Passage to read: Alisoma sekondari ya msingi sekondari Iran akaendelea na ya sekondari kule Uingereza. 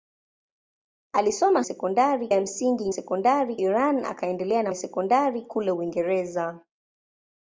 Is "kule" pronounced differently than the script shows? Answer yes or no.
no